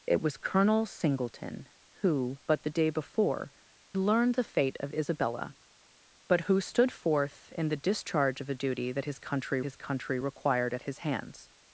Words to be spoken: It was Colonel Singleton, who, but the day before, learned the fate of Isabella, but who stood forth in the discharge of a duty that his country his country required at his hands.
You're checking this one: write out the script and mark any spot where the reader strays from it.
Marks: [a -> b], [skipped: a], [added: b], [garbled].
It was Colonel Singleton, who, but the day before, learned the fate of Isabella, but who stood forth in the discharge of a duty that his country his country required at his hands.